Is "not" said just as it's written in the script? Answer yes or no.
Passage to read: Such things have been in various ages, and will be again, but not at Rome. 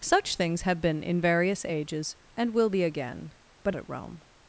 no